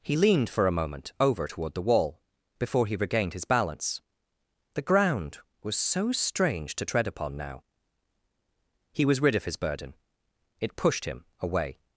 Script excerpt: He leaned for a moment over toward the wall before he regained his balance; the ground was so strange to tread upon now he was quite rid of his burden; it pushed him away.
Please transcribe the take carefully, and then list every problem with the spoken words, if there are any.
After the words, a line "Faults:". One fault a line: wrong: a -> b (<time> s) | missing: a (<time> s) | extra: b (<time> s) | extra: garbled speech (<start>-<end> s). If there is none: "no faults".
He leaned for a moment over toward the wall before he regained his balance; the ground was so strange to tread upon now he was rid of his burden; it pushed him away.
Faults:
missing: quite (9.2 s)